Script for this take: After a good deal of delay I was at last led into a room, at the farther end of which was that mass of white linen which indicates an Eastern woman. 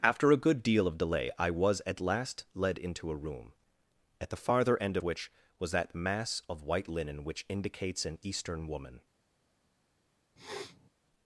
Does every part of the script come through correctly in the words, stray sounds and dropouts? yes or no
no